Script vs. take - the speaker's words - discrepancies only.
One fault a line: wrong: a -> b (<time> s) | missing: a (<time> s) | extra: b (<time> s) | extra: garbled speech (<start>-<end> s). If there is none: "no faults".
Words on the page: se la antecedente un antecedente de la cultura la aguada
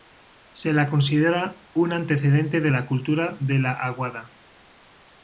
wrong: antecedente -> considera (0.9 s)
extra: de (3.4 s)